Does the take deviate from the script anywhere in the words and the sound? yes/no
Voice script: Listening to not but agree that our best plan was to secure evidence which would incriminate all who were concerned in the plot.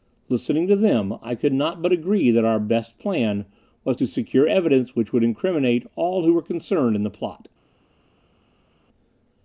yes